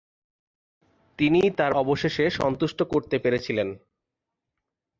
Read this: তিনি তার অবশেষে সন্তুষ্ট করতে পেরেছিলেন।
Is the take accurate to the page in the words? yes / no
yes